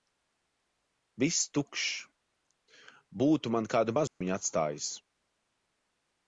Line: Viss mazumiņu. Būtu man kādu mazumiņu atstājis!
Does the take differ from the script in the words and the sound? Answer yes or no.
yes